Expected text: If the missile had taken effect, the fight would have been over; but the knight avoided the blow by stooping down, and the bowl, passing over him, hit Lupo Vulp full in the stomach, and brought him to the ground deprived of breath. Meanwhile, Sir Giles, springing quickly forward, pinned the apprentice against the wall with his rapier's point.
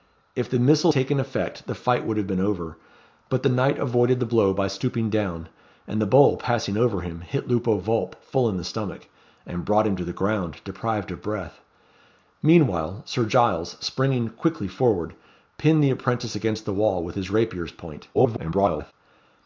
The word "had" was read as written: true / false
false